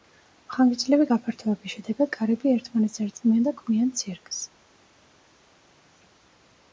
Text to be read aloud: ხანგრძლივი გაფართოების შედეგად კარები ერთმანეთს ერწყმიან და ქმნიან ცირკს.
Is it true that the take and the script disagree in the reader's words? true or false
false